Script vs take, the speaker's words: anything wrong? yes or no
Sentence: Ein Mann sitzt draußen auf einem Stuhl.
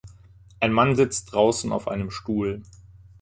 no